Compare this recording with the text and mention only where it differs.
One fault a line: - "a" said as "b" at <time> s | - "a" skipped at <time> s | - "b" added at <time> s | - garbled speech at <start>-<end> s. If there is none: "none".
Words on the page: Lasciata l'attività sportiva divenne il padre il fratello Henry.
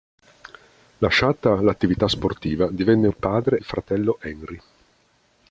none